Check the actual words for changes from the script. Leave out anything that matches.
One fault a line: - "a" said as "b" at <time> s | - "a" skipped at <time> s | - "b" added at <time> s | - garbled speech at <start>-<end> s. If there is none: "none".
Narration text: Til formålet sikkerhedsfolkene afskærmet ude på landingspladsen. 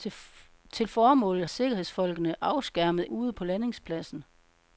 none